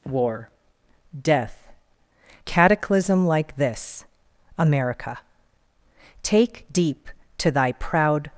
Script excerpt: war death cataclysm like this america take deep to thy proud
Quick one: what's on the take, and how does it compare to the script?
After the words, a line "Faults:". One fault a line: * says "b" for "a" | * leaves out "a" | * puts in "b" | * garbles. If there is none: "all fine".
war death cataclysm like this america take deep to thy proud
Faults:
all fine